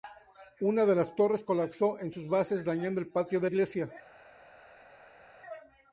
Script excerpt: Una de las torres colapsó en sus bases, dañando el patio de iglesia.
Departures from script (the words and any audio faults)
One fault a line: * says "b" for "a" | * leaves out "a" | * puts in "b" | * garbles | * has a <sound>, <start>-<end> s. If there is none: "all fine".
all fine